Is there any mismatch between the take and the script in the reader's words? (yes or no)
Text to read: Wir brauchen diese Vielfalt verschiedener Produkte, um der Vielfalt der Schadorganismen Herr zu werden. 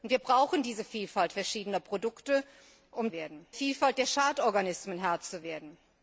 yes